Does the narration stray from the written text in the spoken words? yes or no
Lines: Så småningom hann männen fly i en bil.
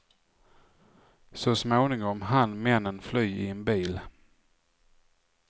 no